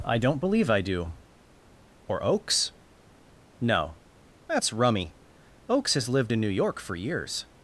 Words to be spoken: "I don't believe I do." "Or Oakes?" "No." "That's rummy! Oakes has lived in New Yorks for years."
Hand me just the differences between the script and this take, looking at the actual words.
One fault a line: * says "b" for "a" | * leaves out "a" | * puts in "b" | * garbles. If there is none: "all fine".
* says "York" for "Yorks"